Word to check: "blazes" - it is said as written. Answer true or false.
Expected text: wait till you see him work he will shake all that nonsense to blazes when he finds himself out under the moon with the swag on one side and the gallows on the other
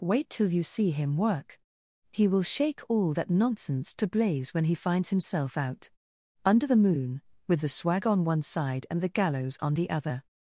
false